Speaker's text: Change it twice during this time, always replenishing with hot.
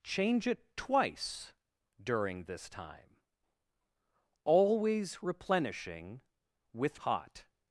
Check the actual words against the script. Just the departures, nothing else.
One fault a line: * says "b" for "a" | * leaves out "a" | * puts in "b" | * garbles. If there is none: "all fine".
all fine